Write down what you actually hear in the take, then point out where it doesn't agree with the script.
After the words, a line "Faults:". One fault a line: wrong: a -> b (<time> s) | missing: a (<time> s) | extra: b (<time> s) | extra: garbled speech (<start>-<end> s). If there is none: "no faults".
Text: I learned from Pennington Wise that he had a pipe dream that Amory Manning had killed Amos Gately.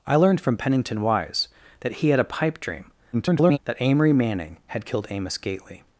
I learned from Pennington Wise that he had a pipe dream [garbled] that Amory Manning had killed Amos Gately.
Faults:
extra: garbled speech (3.1-3.6 s)